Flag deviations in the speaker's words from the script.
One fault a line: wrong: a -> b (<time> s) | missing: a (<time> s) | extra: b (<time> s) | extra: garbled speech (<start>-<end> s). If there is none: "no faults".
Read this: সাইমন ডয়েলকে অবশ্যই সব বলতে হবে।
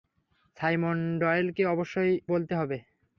missing: সব (2.1 s)